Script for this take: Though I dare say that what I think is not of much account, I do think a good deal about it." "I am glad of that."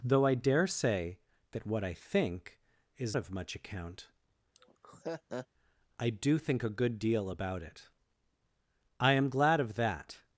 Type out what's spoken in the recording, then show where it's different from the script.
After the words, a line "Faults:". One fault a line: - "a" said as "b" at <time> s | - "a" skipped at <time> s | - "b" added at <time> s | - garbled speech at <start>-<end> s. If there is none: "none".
Though I dare say that what I think is of much account, I do think a good deal about it." "I am glad of that."
Faults:
- "not" skipped at 3.2 s